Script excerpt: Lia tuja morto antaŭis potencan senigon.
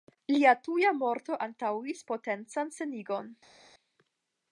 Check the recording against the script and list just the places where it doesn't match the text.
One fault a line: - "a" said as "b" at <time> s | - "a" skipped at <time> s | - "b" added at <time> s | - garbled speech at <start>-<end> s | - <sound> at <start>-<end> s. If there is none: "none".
none